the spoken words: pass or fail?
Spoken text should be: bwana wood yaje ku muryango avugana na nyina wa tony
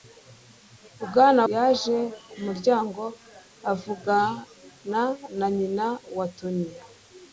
fail